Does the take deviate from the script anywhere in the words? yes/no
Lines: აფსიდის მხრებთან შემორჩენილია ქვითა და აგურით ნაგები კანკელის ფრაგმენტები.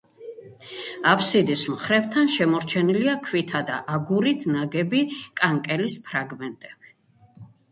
no